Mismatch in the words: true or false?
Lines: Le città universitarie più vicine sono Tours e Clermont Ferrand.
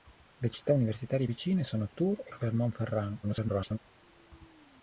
true